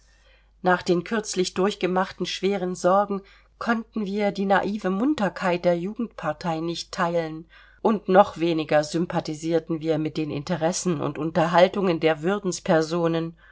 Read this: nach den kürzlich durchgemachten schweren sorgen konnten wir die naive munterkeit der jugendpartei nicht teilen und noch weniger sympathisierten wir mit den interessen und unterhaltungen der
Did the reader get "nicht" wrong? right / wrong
right